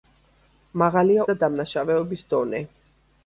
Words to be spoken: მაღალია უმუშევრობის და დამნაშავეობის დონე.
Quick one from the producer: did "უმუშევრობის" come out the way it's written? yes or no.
no